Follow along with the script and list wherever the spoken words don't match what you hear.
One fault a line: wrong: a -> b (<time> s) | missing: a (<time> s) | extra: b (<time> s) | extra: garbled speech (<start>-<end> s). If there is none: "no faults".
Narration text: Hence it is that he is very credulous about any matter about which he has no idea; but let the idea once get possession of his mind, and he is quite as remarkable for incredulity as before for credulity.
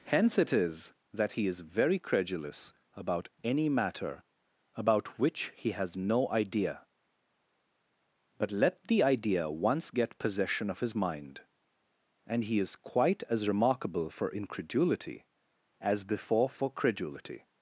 no faults